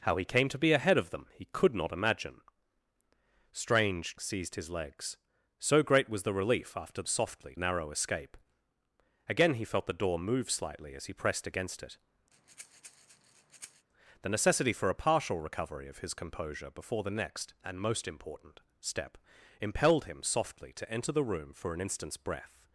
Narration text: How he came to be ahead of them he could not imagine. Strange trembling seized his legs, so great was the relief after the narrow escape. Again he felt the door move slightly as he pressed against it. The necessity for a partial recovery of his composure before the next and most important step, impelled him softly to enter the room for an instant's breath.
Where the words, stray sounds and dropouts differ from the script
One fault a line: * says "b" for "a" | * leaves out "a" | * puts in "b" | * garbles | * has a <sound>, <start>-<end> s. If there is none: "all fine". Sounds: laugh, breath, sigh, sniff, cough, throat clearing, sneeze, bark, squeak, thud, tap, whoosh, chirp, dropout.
* leaves out "trembling"
* says "softly" for "the"
* has a breath, 12.3-13.9 s